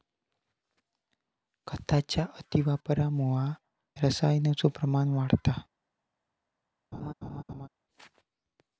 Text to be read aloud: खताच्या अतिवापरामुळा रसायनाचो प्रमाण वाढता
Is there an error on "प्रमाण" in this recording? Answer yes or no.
no